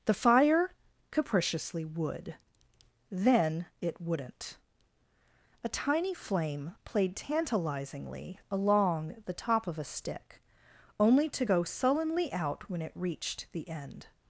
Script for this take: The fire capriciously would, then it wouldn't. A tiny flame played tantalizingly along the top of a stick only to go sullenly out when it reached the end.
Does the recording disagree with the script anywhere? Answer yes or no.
no